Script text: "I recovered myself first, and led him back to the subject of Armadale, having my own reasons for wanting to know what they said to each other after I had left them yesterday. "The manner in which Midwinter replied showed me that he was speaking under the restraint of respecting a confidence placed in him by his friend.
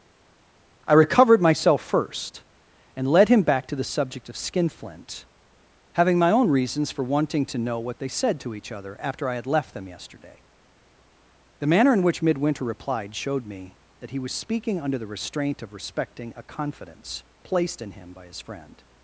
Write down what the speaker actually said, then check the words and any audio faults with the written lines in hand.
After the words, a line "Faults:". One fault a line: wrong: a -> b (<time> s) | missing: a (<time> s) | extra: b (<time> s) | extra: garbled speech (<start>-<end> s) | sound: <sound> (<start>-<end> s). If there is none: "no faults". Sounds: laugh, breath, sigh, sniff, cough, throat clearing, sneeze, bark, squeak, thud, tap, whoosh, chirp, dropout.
"I recovered myself first, and led him back to the subject of Skinflint, having my own reasons for wanting to know what they said to each other after I had left them yesterday. "The manner in which Midwinter replied showed me that he was speaking under the restraint of respecting a confidence placed in him by his friend.
Faults:
wrong: Armadale -> Skinflint (4.4 s)